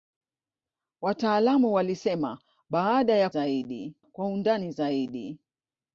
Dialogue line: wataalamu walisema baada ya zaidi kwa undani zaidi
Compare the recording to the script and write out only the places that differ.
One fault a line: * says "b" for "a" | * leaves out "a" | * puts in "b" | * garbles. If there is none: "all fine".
all fine